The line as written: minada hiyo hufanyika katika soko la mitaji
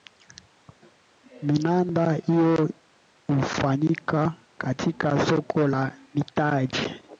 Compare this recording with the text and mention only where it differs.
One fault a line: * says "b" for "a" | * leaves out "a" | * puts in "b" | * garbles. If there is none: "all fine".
all fine